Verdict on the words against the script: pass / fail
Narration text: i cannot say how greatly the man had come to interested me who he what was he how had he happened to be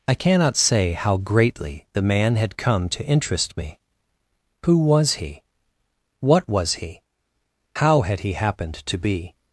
fail